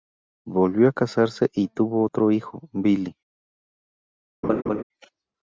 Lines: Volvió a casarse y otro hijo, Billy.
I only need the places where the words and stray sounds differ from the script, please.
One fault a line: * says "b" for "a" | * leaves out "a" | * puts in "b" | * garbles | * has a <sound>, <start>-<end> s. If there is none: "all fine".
* puts in "tuvo"
* has a laugh, 4.4-4.8 s